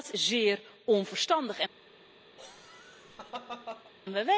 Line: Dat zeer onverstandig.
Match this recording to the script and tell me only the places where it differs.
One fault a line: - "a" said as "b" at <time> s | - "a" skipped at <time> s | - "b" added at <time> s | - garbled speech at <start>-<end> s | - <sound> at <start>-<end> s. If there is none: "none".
- laugh at 2.4-3.9 s